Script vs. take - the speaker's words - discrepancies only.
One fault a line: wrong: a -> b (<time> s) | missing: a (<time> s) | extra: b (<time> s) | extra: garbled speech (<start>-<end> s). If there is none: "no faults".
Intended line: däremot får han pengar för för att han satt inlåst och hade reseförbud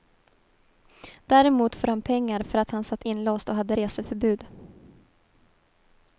missing: för (2.6 s)